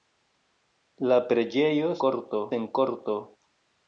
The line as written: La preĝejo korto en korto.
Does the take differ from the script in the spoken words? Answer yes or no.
no